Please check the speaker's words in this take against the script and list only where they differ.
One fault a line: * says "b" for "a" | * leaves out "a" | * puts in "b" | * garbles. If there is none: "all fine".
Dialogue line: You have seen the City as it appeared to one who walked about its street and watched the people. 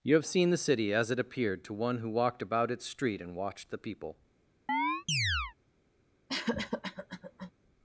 all fine